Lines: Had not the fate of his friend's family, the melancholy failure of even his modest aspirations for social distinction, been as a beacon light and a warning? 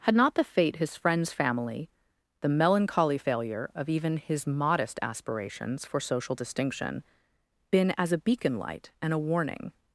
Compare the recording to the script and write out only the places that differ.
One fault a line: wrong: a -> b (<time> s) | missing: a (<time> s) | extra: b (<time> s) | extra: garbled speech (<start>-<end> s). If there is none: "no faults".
missing: of (0.8 s)